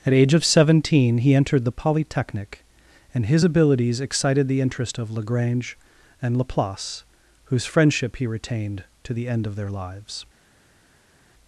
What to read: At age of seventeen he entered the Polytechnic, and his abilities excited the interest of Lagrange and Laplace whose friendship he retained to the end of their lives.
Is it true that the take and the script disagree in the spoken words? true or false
false